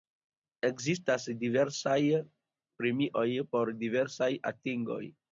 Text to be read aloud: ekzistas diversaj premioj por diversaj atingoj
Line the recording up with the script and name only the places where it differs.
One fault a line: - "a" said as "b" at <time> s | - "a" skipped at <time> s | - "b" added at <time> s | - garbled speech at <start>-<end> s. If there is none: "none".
none